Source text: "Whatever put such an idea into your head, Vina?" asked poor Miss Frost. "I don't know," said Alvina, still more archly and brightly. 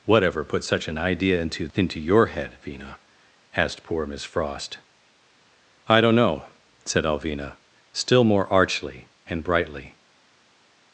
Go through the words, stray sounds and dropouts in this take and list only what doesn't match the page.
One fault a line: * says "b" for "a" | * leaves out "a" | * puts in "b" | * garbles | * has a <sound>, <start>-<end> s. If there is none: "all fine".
* puts in "into"